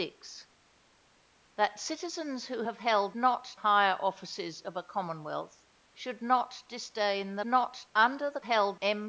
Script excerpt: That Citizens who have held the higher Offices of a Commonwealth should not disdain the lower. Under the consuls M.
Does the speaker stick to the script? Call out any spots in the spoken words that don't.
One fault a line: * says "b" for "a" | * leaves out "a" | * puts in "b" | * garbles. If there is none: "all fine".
* says "not" for "the"
* says "not" for "lower"
* says "held" for "consuls"